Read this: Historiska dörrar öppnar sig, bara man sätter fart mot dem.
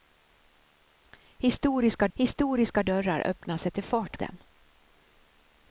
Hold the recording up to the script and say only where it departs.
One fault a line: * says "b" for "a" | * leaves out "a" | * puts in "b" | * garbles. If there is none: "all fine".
* puts in "historiska"
* leaves out "sig bara man"
* leaves out "mot"